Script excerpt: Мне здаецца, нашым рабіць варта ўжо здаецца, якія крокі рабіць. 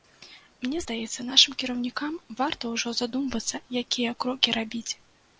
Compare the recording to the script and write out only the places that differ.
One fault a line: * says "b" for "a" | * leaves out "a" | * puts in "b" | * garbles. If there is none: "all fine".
* says "кіраўнікам" for "рабіць"
* says "задумвацца" for "здаецца"